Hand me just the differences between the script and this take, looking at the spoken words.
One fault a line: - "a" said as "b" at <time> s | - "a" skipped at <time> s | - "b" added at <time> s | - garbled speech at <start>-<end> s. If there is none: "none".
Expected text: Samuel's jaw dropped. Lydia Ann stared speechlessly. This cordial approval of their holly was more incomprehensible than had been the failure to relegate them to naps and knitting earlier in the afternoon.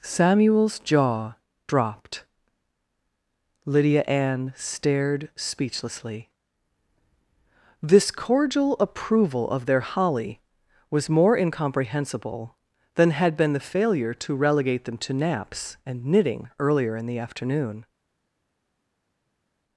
none